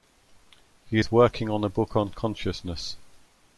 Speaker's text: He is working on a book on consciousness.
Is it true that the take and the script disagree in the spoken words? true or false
false